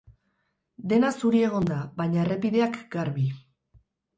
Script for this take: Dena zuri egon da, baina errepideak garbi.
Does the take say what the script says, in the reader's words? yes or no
yes